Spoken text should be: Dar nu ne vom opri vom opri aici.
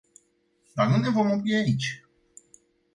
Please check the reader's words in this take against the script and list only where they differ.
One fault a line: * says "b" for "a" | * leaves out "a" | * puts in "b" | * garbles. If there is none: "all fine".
* leaves out "vom opri"